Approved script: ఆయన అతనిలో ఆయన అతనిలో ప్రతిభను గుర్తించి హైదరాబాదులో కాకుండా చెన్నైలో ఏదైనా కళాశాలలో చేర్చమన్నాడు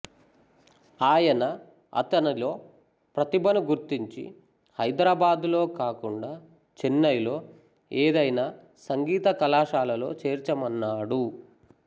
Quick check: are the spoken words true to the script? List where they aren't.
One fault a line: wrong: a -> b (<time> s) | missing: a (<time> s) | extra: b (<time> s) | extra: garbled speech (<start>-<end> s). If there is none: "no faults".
missing: ఆయన అతనిలో (2.5 s)
extra: సంగీత (8.9 s)